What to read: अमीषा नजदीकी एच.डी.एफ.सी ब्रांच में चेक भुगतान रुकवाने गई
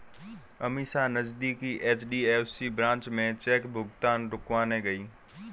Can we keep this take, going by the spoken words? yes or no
yes